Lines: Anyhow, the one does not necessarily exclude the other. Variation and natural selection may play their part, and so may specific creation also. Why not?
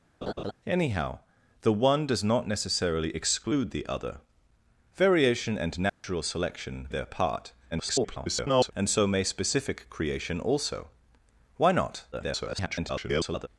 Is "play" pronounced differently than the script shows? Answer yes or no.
yes